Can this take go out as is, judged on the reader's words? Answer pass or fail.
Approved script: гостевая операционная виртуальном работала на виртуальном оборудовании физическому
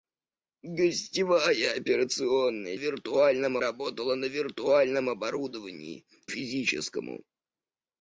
pass